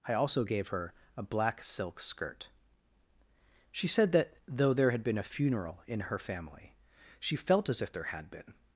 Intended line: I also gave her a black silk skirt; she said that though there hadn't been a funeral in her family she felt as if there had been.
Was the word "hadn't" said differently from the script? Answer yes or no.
yes